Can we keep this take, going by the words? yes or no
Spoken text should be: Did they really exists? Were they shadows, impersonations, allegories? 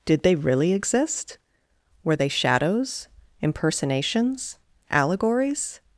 no